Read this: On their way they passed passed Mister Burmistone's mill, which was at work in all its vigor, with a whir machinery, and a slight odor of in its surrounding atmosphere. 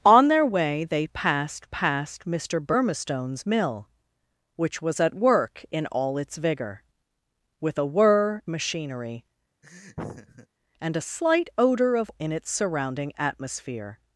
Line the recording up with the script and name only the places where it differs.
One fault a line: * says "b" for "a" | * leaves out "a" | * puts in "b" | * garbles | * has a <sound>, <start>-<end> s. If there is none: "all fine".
* has a laugh, 9.6-10.5 s